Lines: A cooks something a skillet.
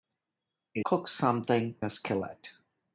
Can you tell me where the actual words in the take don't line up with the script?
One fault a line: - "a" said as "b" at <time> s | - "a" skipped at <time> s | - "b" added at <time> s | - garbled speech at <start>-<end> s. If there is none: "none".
none